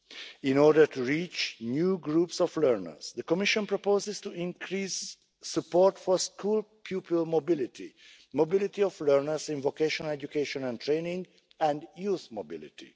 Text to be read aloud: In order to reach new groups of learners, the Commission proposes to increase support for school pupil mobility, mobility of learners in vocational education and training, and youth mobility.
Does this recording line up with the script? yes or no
yes